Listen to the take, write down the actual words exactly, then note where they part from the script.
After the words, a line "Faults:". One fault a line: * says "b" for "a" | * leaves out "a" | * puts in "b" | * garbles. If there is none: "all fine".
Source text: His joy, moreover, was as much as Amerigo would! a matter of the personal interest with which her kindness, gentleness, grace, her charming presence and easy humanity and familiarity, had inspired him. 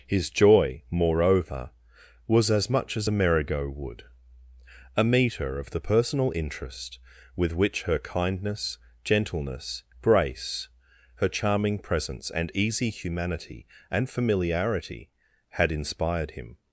His joy, moreover, was as much as Amerigo would! a meter of the personal interest with which her kindness, gentleness, grace, her charming presence and easy humanity and familiarity, had inspired him.
Faults:
* says "meter" for "matter"